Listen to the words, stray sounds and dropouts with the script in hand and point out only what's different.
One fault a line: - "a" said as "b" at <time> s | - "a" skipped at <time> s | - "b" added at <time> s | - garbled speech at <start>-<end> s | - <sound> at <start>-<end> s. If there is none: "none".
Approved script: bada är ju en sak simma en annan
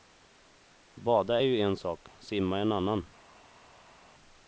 none